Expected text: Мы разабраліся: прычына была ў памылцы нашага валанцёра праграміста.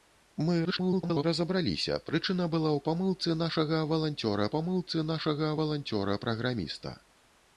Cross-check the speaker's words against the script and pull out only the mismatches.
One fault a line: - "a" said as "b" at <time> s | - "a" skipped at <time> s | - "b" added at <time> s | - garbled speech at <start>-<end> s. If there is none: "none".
- garbled speech at 0.6-1.2 s
- "памылцы нашага валанцёра" added at 4.5 s